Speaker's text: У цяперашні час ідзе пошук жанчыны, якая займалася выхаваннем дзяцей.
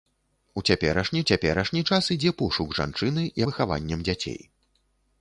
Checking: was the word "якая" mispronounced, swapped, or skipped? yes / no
yes